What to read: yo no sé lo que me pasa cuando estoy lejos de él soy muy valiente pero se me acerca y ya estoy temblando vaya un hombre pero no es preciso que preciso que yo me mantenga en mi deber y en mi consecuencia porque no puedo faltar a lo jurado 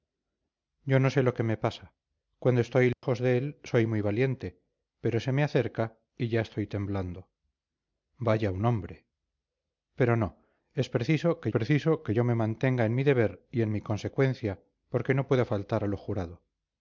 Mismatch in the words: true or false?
false